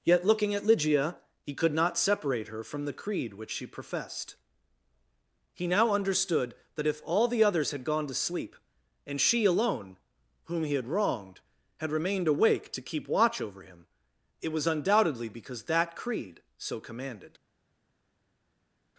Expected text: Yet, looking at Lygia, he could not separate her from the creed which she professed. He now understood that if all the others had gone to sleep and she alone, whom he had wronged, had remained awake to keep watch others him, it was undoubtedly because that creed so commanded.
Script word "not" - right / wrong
right